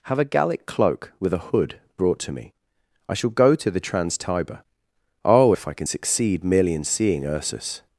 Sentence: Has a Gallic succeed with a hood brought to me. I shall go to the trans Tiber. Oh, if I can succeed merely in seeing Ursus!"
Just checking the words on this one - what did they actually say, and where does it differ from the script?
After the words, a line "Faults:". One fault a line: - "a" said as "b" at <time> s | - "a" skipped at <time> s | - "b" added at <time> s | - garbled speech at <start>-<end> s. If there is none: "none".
Have a Gallic cloak with a hood brought to me. I shall go to the trans Tiber. Oh, if I can succeed merely in seeing Ursus!"
Faults:
- "Has" said as "Have" at 0.1 s
- "succeed" said as "cloak" at 0.7 s